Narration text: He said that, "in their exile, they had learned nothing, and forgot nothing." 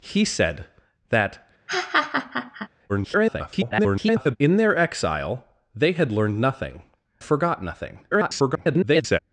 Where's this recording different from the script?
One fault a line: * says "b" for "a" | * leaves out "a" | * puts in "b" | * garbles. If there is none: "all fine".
* garbles
* leaves out "and"
* garbles